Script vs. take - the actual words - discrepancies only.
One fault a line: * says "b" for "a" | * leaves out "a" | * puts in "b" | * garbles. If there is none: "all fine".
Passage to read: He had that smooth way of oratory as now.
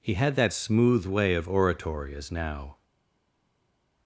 all fine